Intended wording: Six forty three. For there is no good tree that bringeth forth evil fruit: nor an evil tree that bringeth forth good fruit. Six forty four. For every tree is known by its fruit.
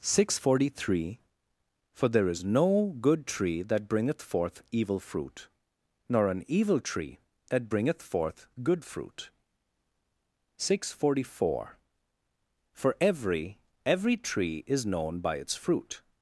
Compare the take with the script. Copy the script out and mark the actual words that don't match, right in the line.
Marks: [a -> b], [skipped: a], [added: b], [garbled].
Six forty three. For there is no good tree that bringeth forth evil fruit: nor an evil tree that bringeth forth good fruit. Six forty four. For every [added: every] tree is known by its fruit.